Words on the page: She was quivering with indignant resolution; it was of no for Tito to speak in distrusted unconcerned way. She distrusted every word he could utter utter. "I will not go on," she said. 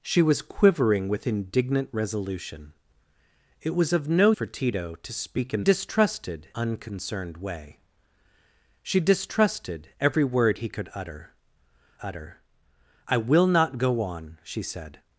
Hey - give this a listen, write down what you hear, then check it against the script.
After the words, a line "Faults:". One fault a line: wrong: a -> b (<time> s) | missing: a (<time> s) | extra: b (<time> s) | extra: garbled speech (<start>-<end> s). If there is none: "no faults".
She was quivering with indignant resolution; it was of no for Tito to speak in distrusted unconcerned way. She distrusted every word he could utter utter. "I will not go on," she said.
Faults:
no faults